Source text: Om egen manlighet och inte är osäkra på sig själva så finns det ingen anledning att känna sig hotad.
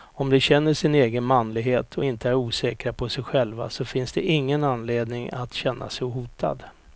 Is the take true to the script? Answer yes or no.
no